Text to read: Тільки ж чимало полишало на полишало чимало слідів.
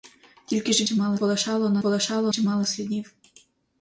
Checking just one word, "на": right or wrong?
right